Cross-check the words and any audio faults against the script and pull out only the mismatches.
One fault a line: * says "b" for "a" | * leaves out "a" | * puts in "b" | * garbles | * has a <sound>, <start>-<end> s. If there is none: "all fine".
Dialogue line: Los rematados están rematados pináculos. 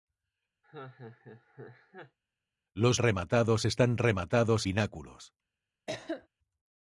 * has a laugh, 0.6-2.2 s
* has a cough, 5.9-6.3 s